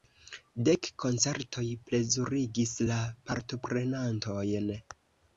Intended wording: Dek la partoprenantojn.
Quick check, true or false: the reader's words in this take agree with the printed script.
false